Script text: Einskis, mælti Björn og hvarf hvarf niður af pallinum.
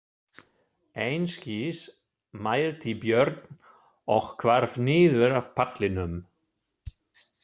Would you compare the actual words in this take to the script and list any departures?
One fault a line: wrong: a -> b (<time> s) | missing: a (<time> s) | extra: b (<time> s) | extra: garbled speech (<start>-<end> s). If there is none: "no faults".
missing: hvarf (4.8 s)